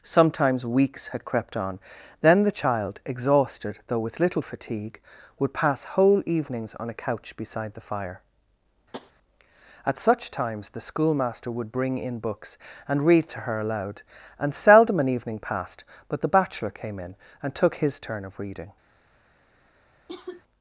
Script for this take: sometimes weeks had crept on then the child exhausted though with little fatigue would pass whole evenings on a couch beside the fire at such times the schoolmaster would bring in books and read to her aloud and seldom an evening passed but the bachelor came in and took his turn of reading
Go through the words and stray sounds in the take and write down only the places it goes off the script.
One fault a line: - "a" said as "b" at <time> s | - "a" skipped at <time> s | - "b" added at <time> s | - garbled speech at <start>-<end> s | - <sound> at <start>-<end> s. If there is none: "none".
- tap at 8.9-9.1 s
- cough at 20.1-20.4 s